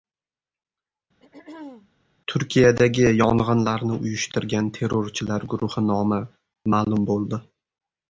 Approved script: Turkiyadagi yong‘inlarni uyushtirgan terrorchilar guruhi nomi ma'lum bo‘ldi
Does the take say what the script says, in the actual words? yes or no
yes